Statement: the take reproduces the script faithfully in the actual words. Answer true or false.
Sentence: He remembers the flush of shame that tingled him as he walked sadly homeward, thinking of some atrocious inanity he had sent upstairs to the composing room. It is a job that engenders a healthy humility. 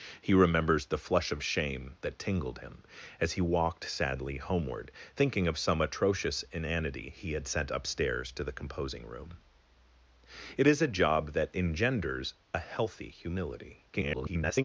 false